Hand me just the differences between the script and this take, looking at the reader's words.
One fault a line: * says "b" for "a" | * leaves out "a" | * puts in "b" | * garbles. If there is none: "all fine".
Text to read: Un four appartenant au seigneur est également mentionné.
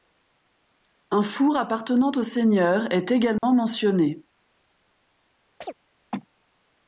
all fine